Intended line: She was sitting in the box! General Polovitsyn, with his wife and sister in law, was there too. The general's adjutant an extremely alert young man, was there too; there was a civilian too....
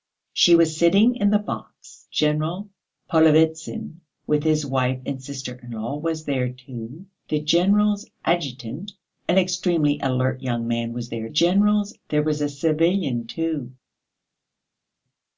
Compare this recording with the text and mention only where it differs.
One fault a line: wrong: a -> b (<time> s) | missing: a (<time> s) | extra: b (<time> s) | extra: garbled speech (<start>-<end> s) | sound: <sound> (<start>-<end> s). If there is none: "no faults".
wrong: too -> general's (11.3 s)